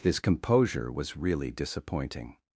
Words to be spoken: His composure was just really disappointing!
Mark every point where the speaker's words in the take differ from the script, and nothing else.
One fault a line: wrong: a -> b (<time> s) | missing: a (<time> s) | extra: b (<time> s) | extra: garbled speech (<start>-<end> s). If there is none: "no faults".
missing: just (1.1 s)